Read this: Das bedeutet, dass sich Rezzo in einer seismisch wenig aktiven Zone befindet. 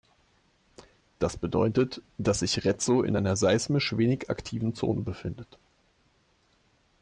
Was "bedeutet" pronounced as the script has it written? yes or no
yes